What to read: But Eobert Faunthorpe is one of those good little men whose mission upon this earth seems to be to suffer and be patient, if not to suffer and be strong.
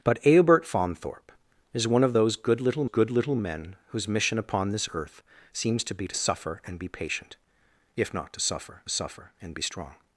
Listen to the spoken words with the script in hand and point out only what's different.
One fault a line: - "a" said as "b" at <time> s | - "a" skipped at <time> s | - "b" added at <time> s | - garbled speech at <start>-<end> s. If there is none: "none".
- "good little" added at 2.8 s
- "suffer" added at 8.9 s